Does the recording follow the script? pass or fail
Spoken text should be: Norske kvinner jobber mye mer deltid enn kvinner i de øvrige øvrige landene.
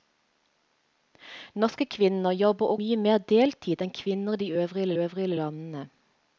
pass